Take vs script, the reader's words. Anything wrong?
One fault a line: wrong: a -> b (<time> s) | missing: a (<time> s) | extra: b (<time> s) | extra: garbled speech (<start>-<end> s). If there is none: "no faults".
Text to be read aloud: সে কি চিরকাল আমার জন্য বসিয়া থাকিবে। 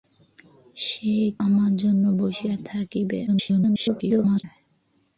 missing: কি চিরকাল (1.1 s)
extra: garbled speech (3.3-4.4 s)